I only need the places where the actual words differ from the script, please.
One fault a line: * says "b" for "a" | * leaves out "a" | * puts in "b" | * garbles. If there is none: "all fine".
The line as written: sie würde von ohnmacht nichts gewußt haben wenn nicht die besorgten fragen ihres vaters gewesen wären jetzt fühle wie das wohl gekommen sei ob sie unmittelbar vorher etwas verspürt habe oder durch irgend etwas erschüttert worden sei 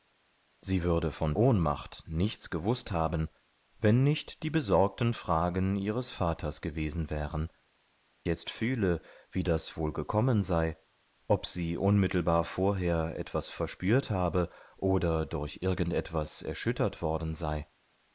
all fine